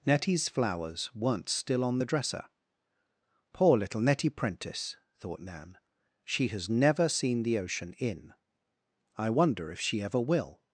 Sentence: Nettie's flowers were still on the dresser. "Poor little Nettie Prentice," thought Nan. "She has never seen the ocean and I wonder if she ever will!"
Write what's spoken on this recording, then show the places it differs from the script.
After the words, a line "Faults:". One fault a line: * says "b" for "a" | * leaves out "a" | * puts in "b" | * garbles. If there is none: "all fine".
Nettie's flowers weren't still on the dresser. "Poor little Nettie Prentice," thought Nan. "She has never seen the ocean in I wonder if she ever will!"
Faults:
* says "weren't" for "were"
* says "in" for "and"